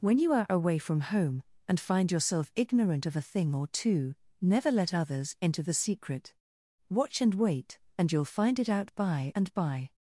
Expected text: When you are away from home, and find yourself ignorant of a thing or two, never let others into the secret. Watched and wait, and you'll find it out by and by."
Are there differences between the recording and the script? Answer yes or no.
yes